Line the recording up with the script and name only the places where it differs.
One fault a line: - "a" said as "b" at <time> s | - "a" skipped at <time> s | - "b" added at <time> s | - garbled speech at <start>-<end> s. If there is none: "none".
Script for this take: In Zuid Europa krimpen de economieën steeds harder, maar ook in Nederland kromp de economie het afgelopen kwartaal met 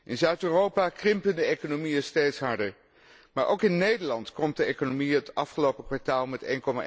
none